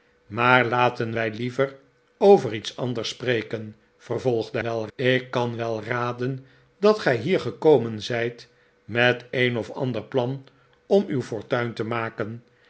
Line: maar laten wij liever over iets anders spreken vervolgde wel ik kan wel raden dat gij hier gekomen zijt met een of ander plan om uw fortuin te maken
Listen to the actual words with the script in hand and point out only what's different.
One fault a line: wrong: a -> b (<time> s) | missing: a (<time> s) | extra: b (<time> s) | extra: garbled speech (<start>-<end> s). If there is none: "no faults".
no faults